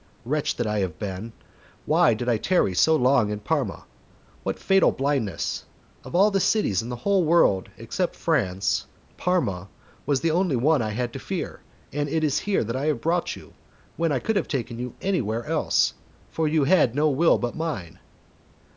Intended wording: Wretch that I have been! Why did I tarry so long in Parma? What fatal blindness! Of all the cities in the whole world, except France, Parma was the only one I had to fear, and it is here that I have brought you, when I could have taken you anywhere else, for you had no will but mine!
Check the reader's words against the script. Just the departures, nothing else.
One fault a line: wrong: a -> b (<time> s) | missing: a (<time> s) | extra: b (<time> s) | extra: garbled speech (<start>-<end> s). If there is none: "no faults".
no faults